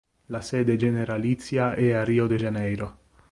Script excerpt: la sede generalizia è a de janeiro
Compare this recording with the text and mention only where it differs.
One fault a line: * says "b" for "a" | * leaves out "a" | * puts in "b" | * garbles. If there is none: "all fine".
* puts in "rio"